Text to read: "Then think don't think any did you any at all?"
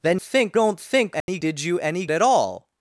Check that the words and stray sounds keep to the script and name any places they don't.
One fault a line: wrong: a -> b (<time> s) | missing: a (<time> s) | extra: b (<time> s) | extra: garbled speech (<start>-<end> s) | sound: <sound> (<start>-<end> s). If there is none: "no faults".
sound: dropout (1.2-1.3 s)